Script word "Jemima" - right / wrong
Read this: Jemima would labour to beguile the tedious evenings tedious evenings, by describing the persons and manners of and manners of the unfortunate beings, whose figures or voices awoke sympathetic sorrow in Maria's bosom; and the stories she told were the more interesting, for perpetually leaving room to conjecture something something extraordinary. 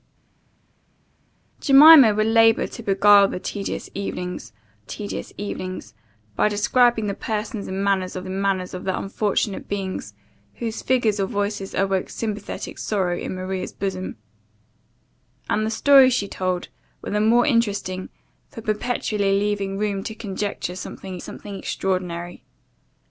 right